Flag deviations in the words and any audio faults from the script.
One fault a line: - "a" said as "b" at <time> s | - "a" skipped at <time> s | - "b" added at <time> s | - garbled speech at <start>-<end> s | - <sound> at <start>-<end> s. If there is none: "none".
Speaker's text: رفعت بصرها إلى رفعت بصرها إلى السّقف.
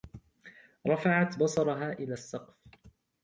- "رفعت بصرها إلى" skipped at 2.1 s